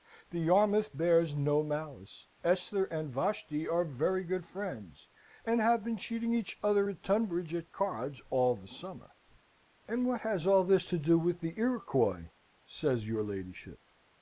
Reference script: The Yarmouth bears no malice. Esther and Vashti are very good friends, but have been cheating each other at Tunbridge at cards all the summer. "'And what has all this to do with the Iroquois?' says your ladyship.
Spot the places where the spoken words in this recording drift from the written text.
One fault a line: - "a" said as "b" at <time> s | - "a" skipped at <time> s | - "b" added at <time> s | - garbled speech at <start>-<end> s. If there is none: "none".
- "but" said as "and" at 5.5 s